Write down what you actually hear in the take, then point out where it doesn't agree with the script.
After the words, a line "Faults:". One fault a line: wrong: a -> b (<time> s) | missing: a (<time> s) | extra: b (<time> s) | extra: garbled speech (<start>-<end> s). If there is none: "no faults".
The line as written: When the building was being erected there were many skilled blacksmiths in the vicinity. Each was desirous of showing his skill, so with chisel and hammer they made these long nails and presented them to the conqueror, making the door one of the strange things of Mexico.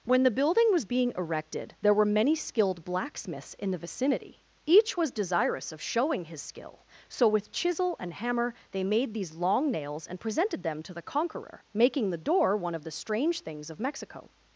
When the building was being erected there were many skilled blacksmiths in the vicinity. Each was desirous of showing his skill, so with chisel and hammer they made these long nails and presented them to the conqueror, making the door one of the strange things of Mexico.
Faults:
no faults